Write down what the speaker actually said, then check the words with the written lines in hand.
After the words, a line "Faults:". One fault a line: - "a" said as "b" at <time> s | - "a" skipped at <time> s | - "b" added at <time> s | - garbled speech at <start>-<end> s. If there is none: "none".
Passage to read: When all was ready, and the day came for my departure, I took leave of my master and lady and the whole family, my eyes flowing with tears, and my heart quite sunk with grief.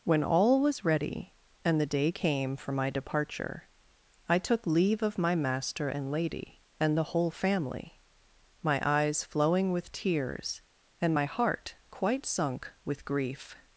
When all was ready, and the day came for my departure, I took leave of my master and lady and the whole family, my eyes flowing with tears, and my heart quite sunk with grief.
Faults:
none